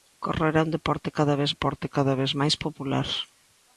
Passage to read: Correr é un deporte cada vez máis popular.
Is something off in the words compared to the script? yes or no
yes